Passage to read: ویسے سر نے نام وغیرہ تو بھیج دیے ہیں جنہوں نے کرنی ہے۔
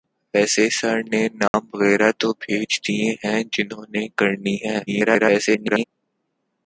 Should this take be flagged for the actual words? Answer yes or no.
yes